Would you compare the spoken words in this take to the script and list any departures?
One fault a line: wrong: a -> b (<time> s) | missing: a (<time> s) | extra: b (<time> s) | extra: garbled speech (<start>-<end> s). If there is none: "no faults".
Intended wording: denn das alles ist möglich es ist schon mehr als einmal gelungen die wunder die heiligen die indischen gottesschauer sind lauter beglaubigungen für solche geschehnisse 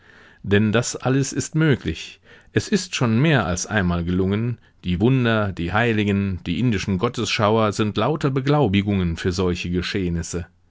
no faults